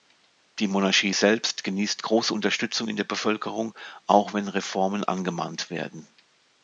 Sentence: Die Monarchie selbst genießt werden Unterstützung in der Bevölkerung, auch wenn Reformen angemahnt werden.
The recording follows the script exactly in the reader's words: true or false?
false